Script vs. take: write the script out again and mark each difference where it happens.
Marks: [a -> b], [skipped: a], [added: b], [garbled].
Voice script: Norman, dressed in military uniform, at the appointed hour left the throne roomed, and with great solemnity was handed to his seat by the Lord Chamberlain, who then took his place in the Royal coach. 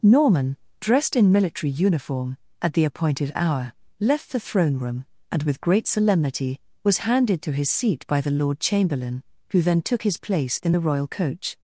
Norman, dressed in military uniform, at the appointed hour left the throne [roomed, -> room] and with great solemnity was handed to his seat by the Lord Chamberlain, who then took his place in the Royal coach.